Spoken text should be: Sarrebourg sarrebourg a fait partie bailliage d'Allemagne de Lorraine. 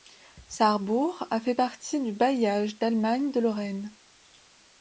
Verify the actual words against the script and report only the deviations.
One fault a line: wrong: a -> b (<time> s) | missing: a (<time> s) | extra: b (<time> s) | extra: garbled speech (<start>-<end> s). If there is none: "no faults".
missing: sarrebourg (1.3 s)
extra: du (2.0 s)